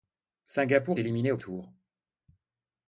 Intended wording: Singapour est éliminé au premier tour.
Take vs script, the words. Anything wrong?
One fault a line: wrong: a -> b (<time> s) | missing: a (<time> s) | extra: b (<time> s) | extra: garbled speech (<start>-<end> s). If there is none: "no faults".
missing: est (1.0 s)
missing: premier (1.4 s)